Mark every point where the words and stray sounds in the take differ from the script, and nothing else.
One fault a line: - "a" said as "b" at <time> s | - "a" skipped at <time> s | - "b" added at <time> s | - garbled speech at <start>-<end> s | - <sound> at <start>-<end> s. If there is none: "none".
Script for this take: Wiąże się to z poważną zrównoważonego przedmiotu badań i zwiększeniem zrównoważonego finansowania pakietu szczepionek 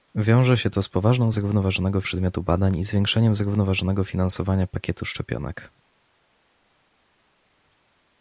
none